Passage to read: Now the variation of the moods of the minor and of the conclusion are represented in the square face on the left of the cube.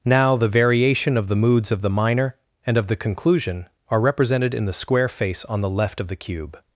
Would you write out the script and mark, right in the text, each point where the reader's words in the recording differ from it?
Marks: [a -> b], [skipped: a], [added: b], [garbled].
Now the variation of the moods of the minor and of the conclusion are represented in the square face on the left of the cube.